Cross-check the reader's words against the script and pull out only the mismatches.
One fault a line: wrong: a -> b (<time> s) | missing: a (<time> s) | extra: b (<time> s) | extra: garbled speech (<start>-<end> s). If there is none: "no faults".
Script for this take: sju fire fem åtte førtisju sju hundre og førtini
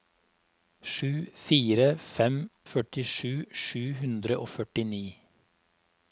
missing: åtte (2.4 s)